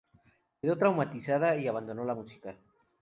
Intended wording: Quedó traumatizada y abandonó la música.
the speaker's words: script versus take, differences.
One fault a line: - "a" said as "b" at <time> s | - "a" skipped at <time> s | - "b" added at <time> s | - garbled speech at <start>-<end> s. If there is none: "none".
none